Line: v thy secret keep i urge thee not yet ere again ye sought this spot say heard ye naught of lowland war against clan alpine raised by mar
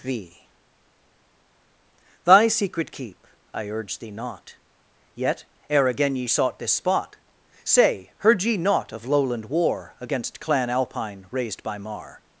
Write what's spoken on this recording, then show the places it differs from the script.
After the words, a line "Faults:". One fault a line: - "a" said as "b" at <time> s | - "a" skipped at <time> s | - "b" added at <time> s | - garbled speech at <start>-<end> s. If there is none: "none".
v thy secret keep i urge thee not yet ere again ye sought this spot say heard ye naught of lowland war against clan alpine raised by mar
Faults:
none